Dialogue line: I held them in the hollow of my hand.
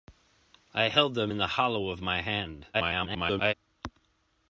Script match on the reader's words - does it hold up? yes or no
no